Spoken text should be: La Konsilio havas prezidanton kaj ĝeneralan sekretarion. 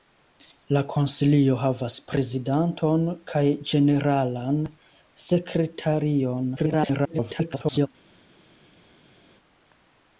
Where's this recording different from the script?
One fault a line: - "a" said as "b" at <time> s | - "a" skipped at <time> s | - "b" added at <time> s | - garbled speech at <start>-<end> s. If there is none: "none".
- garbled speech at 6.6-7.9 s